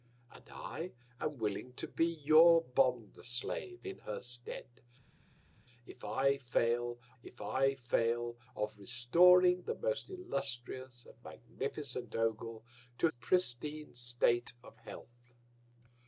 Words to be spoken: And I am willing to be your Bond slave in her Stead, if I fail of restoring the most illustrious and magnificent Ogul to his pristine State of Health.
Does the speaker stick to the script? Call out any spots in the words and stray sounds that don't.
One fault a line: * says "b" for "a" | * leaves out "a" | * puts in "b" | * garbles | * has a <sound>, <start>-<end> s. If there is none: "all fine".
* puts in "if I fail"
* leaves out "his"